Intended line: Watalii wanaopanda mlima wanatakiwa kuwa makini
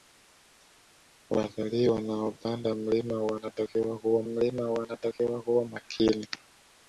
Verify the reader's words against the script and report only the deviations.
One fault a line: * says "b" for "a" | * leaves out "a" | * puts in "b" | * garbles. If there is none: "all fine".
* puts in "mlima wanatakiwa kuwa"